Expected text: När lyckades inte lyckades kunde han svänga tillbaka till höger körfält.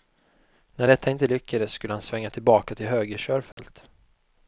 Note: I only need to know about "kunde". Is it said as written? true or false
false